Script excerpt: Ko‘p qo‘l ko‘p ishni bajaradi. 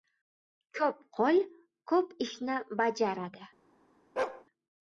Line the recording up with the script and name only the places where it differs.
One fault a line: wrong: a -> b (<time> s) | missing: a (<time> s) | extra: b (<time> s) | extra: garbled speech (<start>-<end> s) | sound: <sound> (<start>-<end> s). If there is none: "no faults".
sound: bark (4.2-4.4 s)